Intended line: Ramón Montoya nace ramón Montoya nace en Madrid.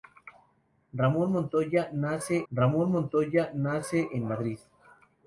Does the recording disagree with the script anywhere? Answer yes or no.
no